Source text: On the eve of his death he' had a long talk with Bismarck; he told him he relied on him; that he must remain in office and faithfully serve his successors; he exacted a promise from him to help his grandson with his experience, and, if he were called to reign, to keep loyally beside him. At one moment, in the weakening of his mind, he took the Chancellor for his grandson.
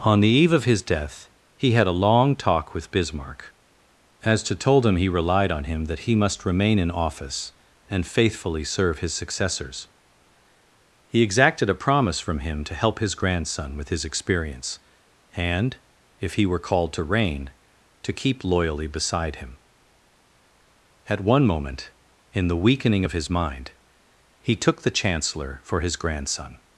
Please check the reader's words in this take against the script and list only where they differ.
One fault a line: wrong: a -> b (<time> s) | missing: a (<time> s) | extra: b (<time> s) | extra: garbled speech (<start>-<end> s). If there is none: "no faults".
wrong: he -> as to (4.2 s)